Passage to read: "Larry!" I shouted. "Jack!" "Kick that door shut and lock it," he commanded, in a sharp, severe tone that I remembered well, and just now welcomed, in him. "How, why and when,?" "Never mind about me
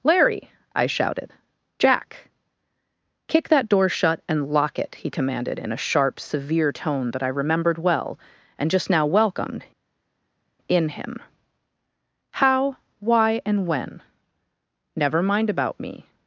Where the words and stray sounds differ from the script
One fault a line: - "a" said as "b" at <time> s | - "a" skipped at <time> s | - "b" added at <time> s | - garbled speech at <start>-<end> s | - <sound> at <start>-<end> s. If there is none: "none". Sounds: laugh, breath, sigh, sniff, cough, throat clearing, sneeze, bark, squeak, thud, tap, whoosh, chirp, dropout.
none